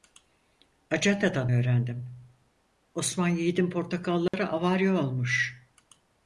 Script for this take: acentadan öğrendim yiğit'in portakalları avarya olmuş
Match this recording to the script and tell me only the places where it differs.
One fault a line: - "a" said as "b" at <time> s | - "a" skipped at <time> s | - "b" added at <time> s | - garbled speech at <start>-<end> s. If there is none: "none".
- "osman" added at 2.9 s